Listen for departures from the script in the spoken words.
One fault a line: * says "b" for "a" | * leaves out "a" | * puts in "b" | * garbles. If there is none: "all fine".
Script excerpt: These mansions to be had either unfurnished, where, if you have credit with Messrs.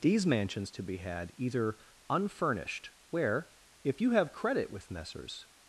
all fine